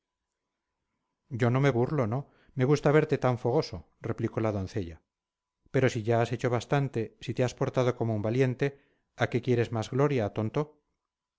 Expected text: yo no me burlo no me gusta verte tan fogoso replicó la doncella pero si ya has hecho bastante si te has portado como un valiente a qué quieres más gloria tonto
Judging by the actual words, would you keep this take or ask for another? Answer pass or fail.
pass